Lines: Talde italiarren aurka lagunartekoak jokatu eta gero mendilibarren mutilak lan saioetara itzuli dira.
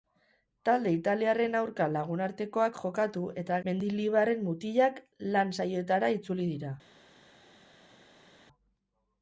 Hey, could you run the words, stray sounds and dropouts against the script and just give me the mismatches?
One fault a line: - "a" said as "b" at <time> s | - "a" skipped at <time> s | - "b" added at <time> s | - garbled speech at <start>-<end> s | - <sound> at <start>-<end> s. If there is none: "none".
- "gero" skipped at 3.6 s